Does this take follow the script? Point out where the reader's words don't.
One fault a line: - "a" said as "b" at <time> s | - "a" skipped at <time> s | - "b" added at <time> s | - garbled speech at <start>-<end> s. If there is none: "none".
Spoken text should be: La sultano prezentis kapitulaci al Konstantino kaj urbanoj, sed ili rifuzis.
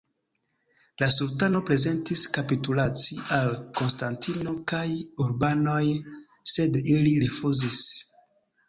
none